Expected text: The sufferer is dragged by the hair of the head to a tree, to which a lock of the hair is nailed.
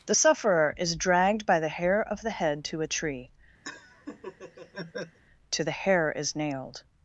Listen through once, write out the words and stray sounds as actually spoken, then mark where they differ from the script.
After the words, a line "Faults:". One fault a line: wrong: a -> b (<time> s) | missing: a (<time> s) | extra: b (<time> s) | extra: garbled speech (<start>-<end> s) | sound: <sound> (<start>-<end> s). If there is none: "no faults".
The sufferer is dragged by the hair of the head to a tree, to the hair is nailed.
Faults:
sound: laugh (3.6-5.2 s)
missing: which a lock of (5.6 s)